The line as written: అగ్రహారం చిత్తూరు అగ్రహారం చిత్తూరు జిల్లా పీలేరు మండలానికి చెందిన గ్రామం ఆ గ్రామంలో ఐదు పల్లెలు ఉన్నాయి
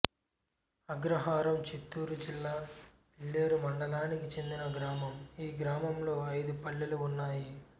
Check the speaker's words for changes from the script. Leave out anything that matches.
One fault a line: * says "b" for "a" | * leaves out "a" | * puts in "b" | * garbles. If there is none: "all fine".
* leaves out "అగ్రహారం చిత్తూరు"
* says "ఈ" for "ఆ"